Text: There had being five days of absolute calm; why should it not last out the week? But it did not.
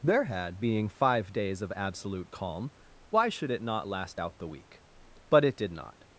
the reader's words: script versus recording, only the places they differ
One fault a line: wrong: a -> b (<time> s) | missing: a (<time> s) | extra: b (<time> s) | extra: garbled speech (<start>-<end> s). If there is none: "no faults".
no faults